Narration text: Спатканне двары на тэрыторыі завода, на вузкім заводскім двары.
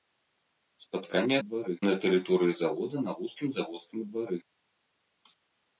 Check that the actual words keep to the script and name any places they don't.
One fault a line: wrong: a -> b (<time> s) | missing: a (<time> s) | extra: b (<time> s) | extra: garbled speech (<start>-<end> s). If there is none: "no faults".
no faults